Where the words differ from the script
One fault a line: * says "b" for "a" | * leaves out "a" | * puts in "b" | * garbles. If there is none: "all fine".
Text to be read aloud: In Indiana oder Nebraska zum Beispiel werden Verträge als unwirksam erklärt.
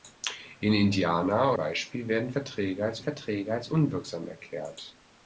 * says "Beispiel werden Verträge als" for "oder Nebraska zum Beispiel werden"